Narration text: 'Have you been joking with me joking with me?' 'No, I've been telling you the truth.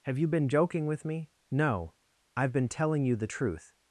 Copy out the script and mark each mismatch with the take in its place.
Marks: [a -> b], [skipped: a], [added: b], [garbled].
'Have you been joking with me [skipped: joking with me?'] 'No, I've been telling you the truth.